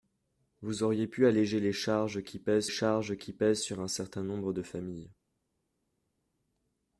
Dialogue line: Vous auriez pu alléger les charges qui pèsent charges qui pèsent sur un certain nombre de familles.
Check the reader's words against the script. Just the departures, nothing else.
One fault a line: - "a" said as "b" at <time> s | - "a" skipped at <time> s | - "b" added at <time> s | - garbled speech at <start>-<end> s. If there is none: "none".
none